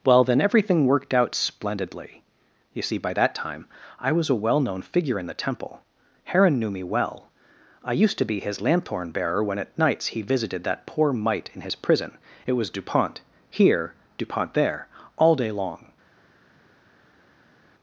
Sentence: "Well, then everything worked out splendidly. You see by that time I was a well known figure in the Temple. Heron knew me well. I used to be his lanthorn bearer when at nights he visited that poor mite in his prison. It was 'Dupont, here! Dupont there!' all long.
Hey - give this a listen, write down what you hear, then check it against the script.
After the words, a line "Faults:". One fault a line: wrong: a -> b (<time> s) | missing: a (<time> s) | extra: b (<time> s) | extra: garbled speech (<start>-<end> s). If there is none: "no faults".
"Well, then everything worked out splendidly. You see by that time I was a well known figure in the Temple. Heron knew me well. I used to be his lanthorn bearer when at nights he visited that poor mite in his prison. It was 'Dupont, here! Dupont there!' all day long.
Faults:
extra: day (15.3 s)